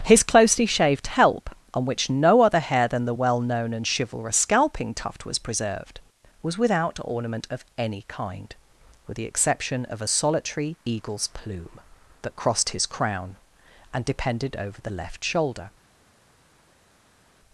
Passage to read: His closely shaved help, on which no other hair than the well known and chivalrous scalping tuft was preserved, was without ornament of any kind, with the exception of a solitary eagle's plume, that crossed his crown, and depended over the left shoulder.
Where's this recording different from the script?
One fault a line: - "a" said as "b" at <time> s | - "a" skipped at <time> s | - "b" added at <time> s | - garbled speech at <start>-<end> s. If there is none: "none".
none